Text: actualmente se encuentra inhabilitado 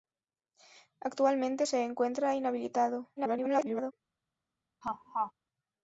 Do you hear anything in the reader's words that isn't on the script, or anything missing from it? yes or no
yes